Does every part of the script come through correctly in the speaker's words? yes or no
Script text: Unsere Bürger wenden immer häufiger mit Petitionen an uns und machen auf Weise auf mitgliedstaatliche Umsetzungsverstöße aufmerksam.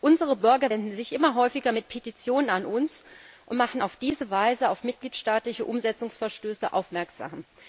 no